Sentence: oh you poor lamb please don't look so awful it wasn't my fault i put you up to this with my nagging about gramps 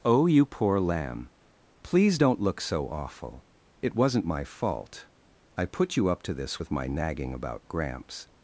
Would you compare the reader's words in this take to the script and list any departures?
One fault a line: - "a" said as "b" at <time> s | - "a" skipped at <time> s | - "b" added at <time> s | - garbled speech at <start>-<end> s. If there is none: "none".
none